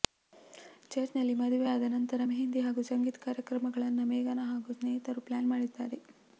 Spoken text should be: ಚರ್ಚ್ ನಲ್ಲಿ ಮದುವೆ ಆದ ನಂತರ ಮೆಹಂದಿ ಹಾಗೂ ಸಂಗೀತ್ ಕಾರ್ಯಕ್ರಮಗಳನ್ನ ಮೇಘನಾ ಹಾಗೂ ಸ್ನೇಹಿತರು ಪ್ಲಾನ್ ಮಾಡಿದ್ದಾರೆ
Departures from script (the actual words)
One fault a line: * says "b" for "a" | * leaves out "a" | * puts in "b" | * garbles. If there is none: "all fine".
all fine